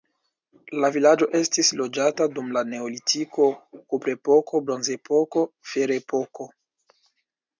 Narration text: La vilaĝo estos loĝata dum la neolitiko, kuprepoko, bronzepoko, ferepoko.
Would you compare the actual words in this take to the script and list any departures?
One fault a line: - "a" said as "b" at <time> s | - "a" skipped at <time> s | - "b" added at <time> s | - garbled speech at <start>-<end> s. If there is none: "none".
- "estos" said as "estis" at 1.4 s